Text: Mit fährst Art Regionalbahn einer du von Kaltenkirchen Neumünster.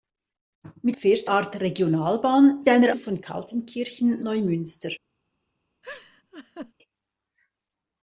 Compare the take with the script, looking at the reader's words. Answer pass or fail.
pass